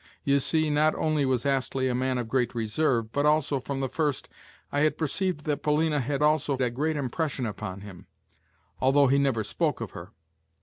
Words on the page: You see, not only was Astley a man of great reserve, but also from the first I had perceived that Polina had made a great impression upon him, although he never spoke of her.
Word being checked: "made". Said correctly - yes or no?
no